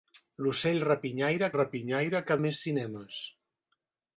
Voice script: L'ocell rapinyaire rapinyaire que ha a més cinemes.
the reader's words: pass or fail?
pass